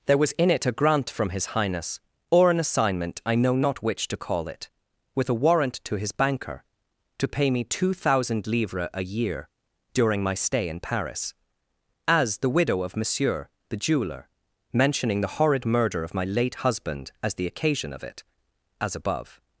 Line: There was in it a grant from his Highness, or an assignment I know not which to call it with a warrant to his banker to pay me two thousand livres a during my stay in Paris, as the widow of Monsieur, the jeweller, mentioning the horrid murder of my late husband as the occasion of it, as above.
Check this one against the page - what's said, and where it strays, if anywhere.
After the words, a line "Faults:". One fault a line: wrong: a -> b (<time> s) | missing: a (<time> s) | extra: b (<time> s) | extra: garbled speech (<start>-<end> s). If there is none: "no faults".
There was in it a grant from his Highness, or an assignment I know not which to call it with a warrant to his banker to pay me two thousand livres a year during my stay in Paris, as the widow of Monsieur, the jeweller, mentioning the horrid murder of my late husband as the occasion of it, as above.
Faults:
extra: year (9.0 s)